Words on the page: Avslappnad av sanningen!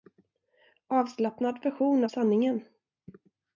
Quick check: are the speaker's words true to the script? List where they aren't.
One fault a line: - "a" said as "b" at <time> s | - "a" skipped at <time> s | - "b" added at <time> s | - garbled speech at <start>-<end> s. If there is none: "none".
- "version" added at 1.6 s